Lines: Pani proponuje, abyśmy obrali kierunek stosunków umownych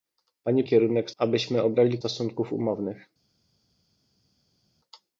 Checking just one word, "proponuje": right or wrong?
wrong